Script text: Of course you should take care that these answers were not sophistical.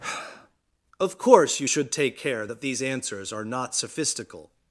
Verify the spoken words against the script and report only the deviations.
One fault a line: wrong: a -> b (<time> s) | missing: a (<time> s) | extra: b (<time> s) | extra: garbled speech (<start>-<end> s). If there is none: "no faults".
wrong: were -> are (3.3 s)